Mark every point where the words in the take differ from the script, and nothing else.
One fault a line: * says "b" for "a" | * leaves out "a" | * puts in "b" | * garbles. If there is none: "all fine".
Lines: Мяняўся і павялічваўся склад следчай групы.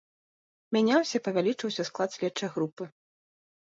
all fine